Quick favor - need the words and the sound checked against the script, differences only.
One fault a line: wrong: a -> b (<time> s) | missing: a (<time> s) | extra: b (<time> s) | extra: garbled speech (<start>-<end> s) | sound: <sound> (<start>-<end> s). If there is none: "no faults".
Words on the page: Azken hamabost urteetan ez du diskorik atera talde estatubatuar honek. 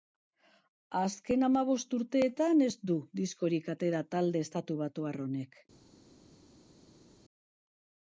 no faults